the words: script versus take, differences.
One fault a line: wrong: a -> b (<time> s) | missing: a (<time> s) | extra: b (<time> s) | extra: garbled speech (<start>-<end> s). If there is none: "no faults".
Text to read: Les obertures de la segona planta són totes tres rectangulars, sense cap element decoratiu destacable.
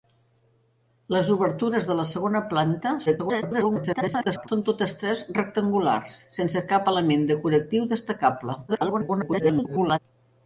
extra: garbled speech (3.1-4.5 s)
extra: garbled speech (8.7-10.0 s)